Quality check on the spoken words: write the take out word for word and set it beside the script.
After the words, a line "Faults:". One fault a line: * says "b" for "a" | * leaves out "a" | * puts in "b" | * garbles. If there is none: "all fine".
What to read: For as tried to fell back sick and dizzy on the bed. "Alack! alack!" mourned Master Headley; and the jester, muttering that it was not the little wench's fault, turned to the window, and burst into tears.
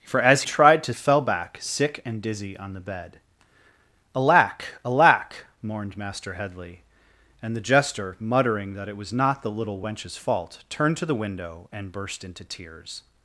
For as tried to fell back sick and dizzy on the bed. "Alack! alack!" mourned Master Headley; and the jester, muttering that it was not the little wench's fault, turned to the window, and burst into tears.
Faults:
all fine